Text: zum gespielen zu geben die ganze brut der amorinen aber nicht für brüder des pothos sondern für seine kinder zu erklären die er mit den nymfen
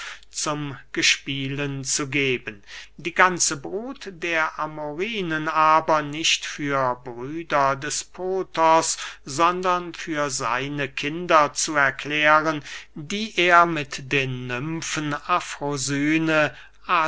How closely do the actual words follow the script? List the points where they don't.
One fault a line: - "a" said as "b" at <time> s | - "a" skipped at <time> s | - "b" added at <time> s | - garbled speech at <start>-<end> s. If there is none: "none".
none